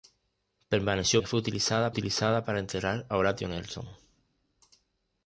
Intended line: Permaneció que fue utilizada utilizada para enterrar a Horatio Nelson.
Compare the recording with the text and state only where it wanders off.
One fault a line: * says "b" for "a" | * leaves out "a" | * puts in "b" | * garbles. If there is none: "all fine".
all fine